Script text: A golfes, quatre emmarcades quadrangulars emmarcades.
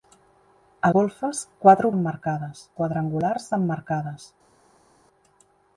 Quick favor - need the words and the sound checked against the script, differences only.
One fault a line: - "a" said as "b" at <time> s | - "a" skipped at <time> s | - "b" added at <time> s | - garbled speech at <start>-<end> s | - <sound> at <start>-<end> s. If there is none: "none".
none